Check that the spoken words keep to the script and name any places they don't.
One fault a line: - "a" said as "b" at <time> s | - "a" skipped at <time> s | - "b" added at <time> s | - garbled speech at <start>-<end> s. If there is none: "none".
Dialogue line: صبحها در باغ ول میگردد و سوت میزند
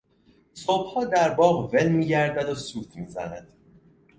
none